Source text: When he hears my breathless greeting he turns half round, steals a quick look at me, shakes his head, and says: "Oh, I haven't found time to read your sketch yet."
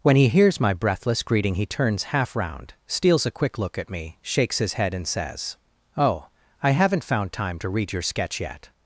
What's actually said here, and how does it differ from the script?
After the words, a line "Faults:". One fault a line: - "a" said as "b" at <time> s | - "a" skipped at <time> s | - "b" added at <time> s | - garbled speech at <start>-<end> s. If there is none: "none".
When he hears my breathless greeting he turns half round, steals a quick look at me, shakes his head, and says: "Oh, I haven't found time to read your sketch yet."
Faults:
none